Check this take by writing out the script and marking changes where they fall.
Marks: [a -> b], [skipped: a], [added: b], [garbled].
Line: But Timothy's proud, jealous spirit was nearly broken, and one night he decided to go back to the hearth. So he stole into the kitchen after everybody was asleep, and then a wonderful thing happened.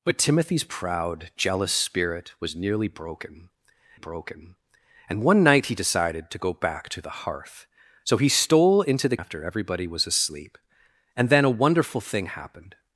But Timothy's proud, jealous spirit was nearly broken, [added: broken] and one night he decided to go back to the hearth. So he stole into the [skipped: kitchen] after everybody was asleep, and then a wonderful thing happened.